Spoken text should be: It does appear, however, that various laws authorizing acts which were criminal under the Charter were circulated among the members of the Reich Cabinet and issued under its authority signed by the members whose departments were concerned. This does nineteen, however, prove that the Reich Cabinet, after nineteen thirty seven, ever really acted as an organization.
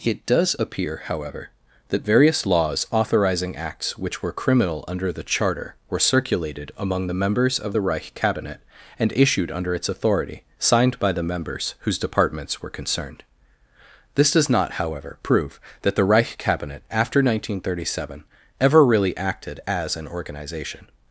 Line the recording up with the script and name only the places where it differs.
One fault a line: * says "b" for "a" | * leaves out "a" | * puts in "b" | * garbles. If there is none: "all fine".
* says "not" for "nineteen"